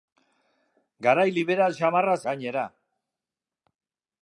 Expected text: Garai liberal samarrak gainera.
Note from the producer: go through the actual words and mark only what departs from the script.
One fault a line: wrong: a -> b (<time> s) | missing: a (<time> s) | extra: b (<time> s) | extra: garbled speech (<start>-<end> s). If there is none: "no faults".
no faults